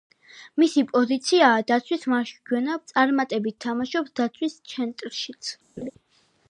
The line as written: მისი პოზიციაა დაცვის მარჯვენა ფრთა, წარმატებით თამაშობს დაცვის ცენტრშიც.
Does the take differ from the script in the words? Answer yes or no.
yes